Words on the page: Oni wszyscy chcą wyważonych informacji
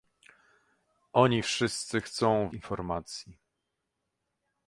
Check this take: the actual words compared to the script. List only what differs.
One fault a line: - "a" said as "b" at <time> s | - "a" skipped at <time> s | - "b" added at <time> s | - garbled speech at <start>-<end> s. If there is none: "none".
- "wyważonych" skipped at 2.5 s